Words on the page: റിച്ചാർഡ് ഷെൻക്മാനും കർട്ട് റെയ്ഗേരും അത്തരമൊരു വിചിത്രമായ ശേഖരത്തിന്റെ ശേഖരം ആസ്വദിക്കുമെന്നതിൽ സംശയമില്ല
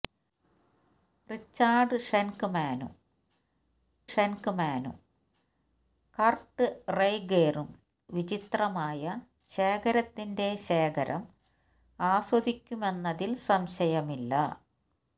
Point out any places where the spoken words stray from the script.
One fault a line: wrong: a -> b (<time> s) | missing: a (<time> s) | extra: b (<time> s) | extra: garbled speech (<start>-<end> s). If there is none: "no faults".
extra: ഷെൻക്മാനും (4.1 s)
missing: അത്തരമൊരു (7.7 s)